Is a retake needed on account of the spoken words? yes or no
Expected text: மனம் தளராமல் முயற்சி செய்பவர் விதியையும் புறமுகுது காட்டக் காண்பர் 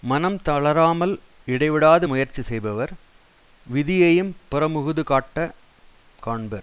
yes